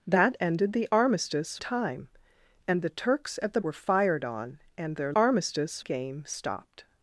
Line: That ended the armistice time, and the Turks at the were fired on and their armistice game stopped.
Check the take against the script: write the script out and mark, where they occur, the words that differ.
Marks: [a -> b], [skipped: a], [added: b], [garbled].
That ended the armistice time, and the Turks at the were fired on and their armistice game stopped.